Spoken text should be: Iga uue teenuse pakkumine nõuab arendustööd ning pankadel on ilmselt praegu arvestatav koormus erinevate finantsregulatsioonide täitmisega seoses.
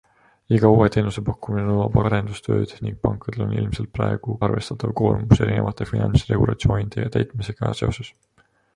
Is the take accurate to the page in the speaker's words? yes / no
yes